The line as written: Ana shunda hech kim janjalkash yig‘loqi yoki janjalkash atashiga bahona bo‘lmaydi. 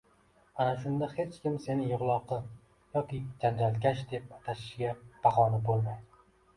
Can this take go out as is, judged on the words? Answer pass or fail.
fail